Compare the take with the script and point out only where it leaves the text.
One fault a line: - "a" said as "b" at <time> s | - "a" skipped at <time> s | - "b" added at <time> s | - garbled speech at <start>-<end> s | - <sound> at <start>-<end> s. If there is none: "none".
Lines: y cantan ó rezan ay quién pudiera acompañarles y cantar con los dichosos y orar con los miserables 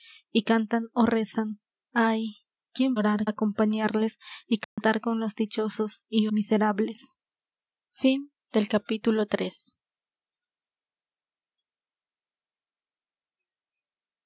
- "pudiera" said as "orar" at 2.9 s
- dropout at 4.6-4.8 s
- "orar con los" skipped at 6.3 s